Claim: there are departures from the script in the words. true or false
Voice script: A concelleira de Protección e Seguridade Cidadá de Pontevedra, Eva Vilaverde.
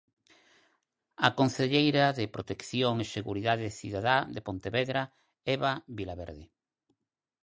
false